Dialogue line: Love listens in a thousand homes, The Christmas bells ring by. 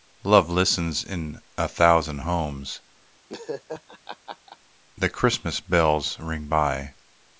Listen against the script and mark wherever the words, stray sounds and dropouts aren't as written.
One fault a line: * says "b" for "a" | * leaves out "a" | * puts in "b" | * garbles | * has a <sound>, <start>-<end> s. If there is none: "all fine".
* has a laugh, 3.3-4.6 s